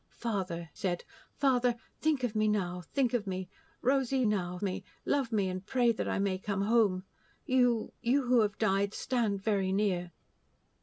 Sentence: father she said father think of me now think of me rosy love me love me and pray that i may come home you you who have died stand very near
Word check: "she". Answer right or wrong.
wrong